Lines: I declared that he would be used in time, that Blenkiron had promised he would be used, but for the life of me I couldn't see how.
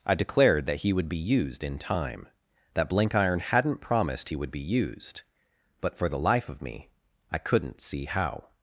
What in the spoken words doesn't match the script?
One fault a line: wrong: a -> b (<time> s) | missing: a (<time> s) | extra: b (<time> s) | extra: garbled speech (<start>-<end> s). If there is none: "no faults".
wrong: had -> hadn't (3.4 s)